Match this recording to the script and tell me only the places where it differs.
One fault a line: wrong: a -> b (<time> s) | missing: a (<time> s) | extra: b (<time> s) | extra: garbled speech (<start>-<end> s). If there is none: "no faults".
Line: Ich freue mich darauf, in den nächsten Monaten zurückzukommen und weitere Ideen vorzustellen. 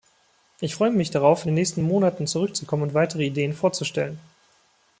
no faults